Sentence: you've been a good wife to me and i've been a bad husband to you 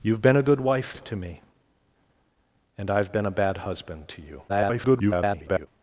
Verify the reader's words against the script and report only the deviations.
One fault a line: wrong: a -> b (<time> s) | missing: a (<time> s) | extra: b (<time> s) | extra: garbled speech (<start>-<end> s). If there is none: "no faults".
extra: garbled speech (4.5-5.7 s)